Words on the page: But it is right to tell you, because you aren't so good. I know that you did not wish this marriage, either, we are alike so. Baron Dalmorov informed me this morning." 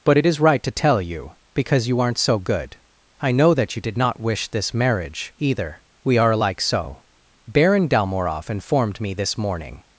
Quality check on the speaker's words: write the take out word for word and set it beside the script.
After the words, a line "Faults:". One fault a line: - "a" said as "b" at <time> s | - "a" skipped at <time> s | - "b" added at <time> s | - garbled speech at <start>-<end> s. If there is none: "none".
But it is right to tell you, because you aren't so good. I know that you did not wish this marriage, either, we are alike so. Baron Dalmorov informed me this morning."
Faults:
none